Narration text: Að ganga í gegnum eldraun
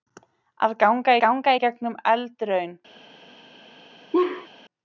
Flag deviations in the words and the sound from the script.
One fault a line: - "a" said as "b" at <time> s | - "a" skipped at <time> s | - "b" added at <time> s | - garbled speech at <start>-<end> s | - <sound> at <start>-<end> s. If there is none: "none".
- "ganga" added at 1.2 s
- laugh at 4.1-4.5 s